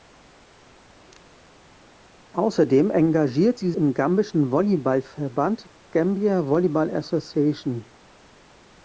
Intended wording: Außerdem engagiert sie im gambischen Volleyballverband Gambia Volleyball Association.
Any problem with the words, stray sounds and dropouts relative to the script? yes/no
no